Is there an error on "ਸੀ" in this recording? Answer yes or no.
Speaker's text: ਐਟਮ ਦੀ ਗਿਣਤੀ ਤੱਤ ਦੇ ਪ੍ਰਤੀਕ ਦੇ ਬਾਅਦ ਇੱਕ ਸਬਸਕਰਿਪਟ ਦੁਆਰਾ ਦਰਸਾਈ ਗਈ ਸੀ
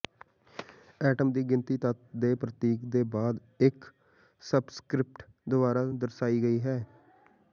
yes